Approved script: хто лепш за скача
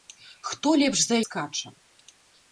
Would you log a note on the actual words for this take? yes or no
no